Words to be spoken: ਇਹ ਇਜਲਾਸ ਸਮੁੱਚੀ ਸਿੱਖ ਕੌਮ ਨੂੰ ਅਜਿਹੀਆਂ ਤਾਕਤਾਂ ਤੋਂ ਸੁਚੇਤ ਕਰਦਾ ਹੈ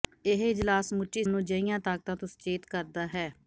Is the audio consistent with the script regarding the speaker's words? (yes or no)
no